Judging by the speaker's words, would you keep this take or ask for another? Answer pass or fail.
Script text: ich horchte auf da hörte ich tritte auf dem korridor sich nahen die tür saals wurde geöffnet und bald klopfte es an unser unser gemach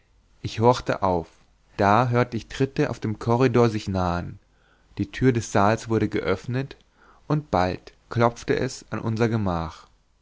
fail